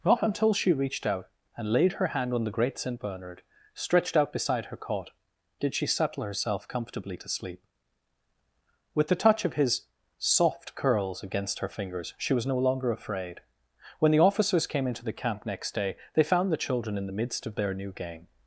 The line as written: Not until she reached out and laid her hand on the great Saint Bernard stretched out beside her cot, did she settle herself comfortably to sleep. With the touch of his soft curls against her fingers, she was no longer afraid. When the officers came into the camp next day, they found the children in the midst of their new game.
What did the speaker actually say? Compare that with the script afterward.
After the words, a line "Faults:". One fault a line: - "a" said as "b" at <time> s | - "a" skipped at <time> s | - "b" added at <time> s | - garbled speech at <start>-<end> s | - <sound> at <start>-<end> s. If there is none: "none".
Not until she reached out and laid her hand on the great Saint Bernard stretched out beside her cot, did she settle herself comfortably to sleep. With the touch of his soft curls against her fingers, she was no longer afraid. When the officers came into the camp next day, they found the children in the midst of their new game.
Faults:
none